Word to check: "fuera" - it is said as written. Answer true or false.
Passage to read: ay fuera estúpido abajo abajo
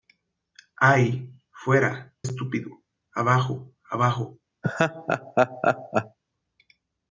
true